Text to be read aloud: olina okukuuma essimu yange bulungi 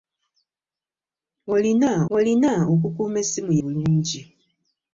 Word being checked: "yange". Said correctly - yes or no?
no